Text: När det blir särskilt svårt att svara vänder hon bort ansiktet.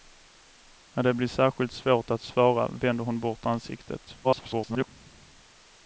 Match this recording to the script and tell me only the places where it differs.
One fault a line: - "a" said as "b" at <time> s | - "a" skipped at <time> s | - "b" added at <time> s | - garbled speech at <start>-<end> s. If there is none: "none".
- garbled speech at 4.2-4.9 s